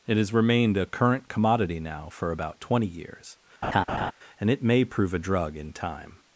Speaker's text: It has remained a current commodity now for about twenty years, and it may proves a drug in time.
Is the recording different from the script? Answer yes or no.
yes